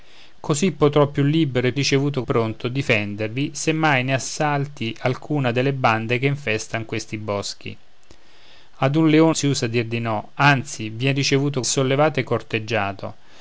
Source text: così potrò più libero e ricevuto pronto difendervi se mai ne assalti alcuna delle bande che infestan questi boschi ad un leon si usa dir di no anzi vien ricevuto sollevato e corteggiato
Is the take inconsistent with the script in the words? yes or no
no